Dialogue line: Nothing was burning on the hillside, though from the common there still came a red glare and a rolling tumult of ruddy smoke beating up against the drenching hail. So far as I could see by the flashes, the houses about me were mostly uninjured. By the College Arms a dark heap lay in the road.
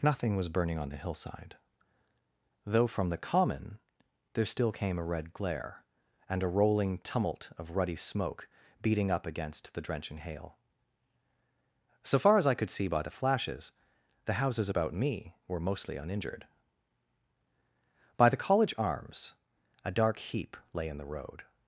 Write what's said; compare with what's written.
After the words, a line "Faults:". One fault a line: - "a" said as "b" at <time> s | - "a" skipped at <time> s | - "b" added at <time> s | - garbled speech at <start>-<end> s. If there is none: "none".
Nothing was burning on the hillside, though from the common there still came a red glare and a rolling tumult of ruddy smoke beating up against the drenching hail. So far as I could see by the flashes, the houses about me were mostly uninjured. By the College Arms a dark heap lay in the road.
Faults:
none